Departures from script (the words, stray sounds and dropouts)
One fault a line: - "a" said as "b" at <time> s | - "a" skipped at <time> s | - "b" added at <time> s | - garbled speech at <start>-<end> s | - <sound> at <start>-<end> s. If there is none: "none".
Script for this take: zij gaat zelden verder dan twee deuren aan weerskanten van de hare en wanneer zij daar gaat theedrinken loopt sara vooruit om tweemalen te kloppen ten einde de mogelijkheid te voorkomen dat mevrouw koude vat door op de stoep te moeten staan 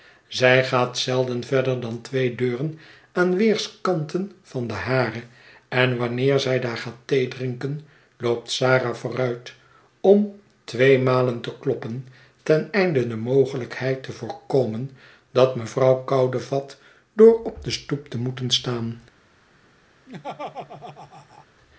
- laugh at 20.1-21.5 s